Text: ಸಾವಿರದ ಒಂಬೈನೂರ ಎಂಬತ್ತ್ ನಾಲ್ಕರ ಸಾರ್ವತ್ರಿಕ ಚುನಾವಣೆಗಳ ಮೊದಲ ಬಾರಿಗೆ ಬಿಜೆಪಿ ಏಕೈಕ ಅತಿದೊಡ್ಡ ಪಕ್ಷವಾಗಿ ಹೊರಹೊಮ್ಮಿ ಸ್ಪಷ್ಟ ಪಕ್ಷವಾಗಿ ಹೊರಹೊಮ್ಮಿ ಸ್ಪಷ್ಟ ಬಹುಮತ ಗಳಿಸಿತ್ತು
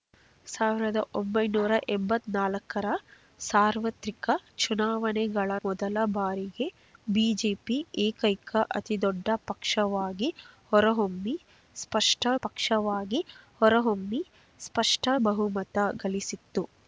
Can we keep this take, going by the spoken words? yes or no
yes